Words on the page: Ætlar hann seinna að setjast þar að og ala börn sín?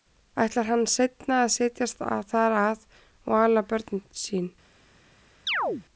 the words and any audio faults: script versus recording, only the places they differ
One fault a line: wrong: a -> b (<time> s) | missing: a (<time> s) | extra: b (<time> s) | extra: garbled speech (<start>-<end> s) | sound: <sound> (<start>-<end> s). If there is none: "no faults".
sound: chirp (5.5-5.8 s)